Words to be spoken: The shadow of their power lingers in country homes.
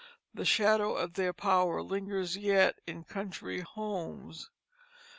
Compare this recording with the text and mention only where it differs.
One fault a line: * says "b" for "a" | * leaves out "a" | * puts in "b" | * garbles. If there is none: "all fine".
* puts in "yet"